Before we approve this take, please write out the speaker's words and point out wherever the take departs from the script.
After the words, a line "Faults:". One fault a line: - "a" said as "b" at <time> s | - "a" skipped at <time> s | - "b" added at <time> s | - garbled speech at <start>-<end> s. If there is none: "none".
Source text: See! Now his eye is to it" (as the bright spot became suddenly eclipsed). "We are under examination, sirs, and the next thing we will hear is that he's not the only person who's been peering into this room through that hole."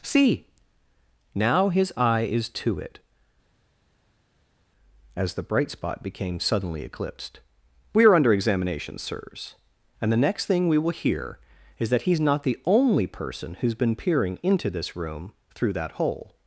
See! Now his eye is to it" (as the bright spot became suddenly eclipsed). "We are under examination, sirs, and the next thing we will hear is that he's not the only person who's been peering into this room through that hole."
Faults:
none